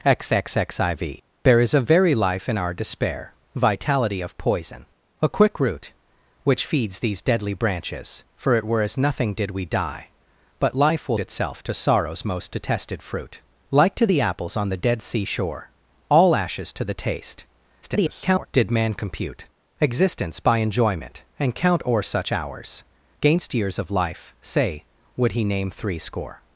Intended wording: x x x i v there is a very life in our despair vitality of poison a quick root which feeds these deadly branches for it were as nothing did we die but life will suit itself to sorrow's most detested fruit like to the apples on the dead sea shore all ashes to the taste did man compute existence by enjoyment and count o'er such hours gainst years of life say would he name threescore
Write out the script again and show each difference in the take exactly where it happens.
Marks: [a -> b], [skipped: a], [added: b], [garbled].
x x x i v there is a very life in our despair vitality of poison a quick root which feeds these deadly branches for it were as nothing did we die but life will [skipped: suit] itself to sorrow's most detested fruit like to the apples on the dead sea shore all ashes to the taste [garbled] did man compute existence by enjoyment and count o'er such hours gainst years of life say would he name threescore